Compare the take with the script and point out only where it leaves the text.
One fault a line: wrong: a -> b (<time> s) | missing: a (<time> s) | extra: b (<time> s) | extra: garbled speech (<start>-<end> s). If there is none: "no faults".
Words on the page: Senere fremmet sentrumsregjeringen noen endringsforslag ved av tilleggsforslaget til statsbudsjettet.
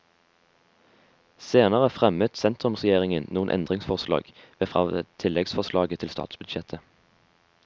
no faults